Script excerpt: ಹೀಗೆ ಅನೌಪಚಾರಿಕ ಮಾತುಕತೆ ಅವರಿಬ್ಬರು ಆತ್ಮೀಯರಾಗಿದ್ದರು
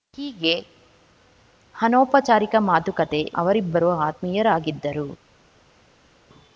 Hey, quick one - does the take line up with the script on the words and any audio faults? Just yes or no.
yes